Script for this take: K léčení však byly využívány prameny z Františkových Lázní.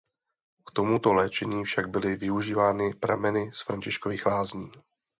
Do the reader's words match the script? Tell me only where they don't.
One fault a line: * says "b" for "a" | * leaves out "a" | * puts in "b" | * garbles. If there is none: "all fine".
* puts in "tomuto"